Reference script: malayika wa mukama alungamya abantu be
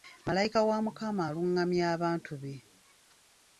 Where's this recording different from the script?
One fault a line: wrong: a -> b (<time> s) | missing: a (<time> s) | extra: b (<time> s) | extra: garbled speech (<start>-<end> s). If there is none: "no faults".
no faults